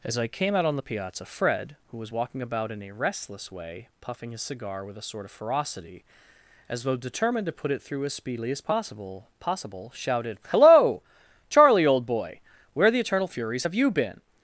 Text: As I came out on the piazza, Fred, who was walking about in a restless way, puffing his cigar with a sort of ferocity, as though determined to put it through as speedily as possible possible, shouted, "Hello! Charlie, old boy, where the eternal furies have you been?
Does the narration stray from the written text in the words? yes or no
no